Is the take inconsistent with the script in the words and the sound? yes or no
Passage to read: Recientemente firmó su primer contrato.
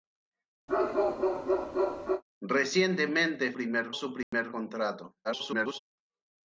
yes